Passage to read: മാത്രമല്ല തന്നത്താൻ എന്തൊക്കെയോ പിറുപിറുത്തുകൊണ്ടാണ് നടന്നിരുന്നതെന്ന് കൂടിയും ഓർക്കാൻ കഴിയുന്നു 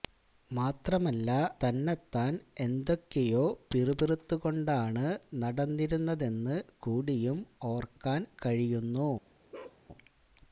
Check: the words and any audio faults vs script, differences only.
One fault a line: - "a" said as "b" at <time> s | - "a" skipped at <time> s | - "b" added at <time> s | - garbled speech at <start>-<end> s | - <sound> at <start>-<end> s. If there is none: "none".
- bark at 9.5-9.8 s